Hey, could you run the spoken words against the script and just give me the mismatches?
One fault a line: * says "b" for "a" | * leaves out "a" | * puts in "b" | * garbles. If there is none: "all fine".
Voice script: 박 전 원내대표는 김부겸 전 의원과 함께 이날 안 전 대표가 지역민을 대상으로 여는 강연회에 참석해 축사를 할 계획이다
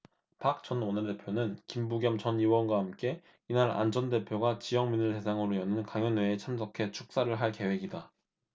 all fine